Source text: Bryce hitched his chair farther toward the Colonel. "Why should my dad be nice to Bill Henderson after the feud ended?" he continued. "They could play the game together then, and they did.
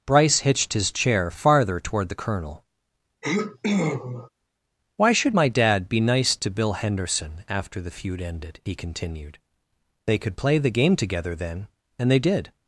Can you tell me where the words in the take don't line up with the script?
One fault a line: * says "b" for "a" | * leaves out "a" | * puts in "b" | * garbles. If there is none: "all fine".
all fine